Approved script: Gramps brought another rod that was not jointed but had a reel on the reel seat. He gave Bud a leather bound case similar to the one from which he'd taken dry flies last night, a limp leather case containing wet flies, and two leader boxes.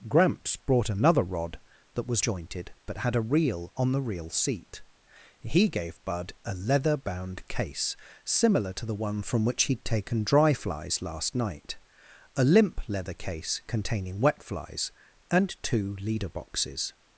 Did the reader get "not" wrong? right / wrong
wrong